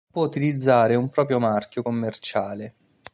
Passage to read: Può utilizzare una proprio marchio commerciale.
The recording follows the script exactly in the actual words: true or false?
false